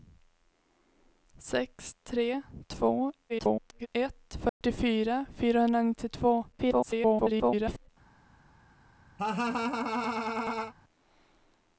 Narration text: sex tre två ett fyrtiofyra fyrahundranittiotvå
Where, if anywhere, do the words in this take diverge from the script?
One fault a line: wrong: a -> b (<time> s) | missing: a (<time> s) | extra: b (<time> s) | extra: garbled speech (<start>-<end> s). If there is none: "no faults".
extra: garbled speech (3.3-3.9 s)
extra: garbled speech (6.5-7.9 s)